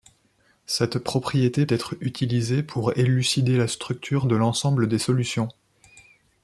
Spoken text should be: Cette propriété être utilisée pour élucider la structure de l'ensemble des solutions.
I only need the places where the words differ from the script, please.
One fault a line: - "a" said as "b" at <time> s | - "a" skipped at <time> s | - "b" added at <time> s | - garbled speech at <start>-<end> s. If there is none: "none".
none